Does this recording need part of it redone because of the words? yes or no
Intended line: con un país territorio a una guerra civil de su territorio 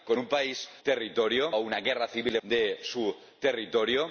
no